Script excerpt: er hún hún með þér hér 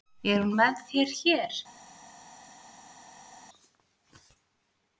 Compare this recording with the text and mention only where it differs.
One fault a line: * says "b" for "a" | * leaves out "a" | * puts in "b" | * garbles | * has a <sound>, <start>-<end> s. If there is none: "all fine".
* leaves out "hún"